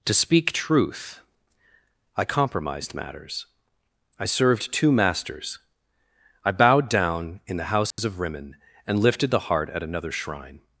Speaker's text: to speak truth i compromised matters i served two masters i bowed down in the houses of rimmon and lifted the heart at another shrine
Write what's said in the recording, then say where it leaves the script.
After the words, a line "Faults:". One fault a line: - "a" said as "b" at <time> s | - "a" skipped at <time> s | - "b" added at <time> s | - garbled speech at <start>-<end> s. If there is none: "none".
to speak truth i compromised matters i served two masters i bowed down in the houses of rimmon and lifted the heart at another shrine
Faults:
none